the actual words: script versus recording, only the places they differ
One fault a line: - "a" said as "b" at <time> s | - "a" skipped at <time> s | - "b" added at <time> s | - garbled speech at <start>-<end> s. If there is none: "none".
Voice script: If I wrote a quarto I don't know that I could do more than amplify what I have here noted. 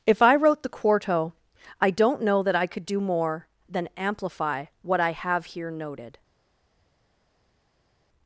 - "a" said as "the" at 0.6 s